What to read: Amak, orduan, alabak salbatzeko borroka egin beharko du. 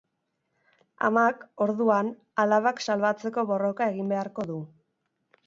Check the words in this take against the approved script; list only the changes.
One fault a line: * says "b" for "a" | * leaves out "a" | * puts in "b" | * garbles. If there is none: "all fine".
all fine